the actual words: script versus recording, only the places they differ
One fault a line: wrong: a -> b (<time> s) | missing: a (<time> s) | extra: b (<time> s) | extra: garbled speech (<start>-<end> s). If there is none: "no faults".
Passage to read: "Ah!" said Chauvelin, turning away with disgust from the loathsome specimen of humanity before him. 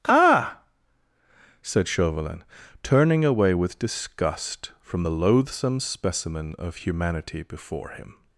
no faults